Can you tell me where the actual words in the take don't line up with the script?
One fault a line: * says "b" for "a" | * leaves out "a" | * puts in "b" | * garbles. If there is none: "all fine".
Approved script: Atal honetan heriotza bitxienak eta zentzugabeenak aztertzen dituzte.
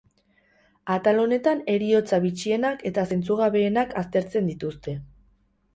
all fine